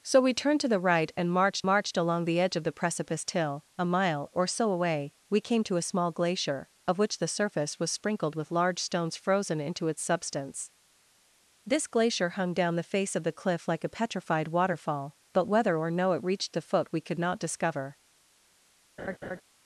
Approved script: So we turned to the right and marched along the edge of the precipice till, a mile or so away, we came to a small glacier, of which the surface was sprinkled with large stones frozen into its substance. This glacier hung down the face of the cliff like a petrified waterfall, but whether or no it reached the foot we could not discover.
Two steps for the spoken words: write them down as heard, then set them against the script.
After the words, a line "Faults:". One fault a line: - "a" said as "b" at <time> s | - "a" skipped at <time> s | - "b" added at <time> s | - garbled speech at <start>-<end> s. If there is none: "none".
So we turned to the right and marched marched along the edge of the precipice till, a mile or so away, we came to a small glacier, of which the surface was sprinkled with large stones frozen into its substance. This glacier hung down the face of the cliff like a petrified waterfall, but whether or no it reached the foot we could not discover.
Faults:
- "marched" added at 1.6 s